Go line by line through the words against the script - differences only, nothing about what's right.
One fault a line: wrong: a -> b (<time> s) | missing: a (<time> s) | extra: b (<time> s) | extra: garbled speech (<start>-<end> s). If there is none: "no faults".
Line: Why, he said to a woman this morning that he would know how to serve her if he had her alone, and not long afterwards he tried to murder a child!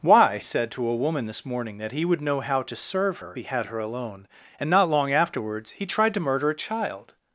missing: he (0.4 s)
missing: if (3.4 s)